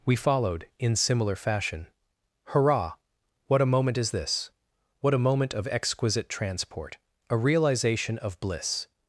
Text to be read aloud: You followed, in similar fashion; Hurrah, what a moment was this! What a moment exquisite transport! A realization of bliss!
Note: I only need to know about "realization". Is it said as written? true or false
true